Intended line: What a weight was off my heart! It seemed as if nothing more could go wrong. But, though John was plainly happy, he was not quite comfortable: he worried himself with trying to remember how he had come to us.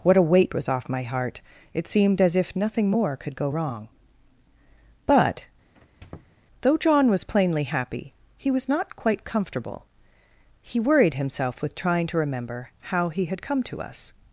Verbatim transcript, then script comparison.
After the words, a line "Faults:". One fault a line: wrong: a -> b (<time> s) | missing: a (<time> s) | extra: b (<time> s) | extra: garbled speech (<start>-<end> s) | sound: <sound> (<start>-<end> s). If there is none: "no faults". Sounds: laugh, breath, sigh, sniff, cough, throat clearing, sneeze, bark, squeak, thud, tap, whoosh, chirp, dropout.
What a weight was off my heart! It seemed as if nothing more could go wrong. But, though John was plainly happy, he was not quite comfortable: he worried himself with trying to remember how he had come to us.
Faults:
sound: squeak (5.7-6.4 s)